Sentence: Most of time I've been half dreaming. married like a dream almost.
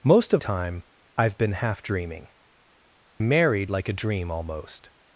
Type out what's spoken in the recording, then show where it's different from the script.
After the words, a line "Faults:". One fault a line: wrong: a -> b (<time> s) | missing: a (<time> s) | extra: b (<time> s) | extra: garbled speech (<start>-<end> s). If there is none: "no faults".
Most of time I've been half dreaming. married like a dream almost.
Faults:
no faults